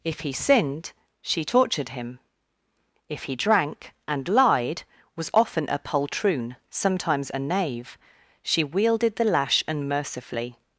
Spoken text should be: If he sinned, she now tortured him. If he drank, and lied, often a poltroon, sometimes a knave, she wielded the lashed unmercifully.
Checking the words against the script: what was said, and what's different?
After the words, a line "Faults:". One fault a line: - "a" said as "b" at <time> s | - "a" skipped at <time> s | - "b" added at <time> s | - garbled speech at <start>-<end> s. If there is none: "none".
If he sinned, she tortured him. If he drank, and lied, was often a poltroon, sometimes a knave, she wielded the lash unmercifully.
Faults:
- "now" skipped at 1.4 s
- "was" added at 5.2 s
- "lashed" said as "lash" at 9.2 s